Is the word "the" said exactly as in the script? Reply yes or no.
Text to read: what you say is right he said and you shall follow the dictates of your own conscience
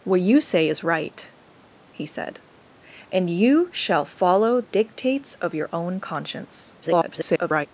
no